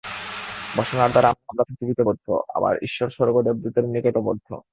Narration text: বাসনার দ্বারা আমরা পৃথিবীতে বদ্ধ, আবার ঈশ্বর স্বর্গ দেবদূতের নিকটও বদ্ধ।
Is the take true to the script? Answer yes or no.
yes